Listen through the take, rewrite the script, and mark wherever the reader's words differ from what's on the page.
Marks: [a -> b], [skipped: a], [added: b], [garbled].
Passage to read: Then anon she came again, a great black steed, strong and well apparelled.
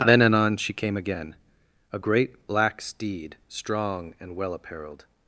Then anon she came again, a great black steed, strong and well apparelled.